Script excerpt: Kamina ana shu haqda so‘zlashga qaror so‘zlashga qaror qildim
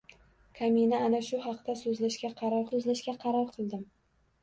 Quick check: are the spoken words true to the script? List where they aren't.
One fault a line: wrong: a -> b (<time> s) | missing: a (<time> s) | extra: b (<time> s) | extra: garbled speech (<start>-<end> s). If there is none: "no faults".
no faults